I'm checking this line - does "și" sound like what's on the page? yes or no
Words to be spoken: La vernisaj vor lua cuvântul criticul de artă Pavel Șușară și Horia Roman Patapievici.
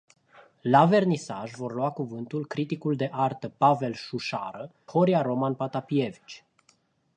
no